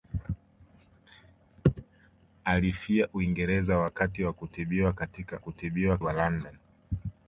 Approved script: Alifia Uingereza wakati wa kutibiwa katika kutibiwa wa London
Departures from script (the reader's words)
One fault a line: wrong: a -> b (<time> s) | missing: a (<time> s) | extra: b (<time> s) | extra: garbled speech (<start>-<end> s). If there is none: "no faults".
no faults